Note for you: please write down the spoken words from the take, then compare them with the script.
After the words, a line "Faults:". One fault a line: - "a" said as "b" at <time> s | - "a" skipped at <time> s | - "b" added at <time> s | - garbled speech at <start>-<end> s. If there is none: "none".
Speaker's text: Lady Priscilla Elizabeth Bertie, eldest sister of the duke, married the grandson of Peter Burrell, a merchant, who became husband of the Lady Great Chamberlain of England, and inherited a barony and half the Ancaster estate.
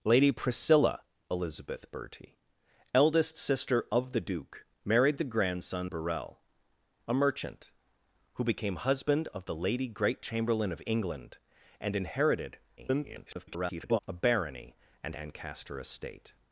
Lady Priscilla Elizabeth Bertie, eldest sister of the duke, married the grandson Burrell, a merchant, who became husband of the Lady Great Chamberlain of England, and inherited [garbled] a barony and Ancaster estate.
Faults:
- "of Peter" skipped at 5.9 s
- garbled speech at 12.8-14.0 s
- "half the" skipped at 15.1 s